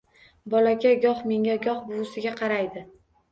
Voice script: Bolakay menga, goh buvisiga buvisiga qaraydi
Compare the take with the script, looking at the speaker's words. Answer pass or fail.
fail